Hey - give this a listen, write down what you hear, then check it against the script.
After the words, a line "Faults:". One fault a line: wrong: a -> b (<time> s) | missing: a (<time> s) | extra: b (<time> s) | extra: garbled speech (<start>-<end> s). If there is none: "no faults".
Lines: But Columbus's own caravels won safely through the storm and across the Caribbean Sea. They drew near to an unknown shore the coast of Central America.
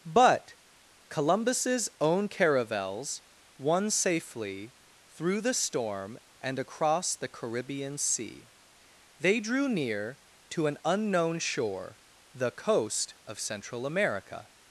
But Columbus's own caravels won safely through the storm and across the Caribbean Sea. They drew near to an unknown shore the coast of Central America.
Faults:
no faults